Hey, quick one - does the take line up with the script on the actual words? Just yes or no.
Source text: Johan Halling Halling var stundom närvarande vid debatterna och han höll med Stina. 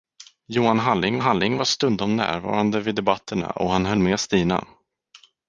yes